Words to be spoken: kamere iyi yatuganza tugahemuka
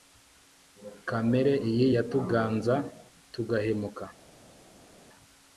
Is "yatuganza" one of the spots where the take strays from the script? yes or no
no